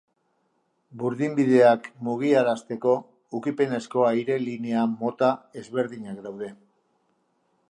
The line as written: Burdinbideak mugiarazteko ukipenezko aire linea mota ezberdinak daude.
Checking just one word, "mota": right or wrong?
right